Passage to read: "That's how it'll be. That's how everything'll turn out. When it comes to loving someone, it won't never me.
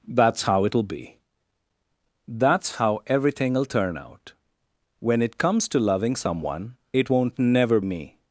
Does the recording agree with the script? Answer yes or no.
yes